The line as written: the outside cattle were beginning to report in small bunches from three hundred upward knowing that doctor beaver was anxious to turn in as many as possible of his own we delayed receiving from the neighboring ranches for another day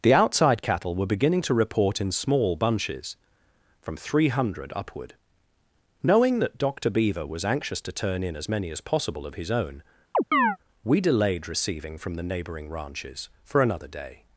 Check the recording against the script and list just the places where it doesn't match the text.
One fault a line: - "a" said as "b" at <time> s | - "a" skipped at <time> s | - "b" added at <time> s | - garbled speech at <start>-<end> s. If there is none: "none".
none